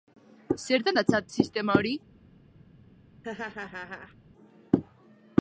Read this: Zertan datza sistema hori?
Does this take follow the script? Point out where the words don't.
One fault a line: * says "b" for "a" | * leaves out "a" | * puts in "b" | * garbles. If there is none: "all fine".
all fine